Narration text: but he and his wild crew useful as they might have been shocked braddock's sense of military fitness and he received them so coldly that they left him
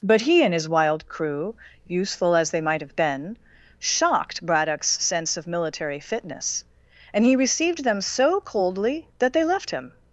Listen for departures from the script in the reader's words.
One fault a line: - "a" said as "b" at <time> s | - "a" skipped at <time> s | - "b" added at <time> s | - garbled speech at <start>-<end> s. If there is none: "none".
none